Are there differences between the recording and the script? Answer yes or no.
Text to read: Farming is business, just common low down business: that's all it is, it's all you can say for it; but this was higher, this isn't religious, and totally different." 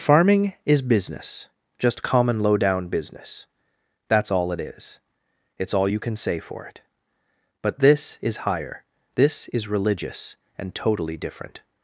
yes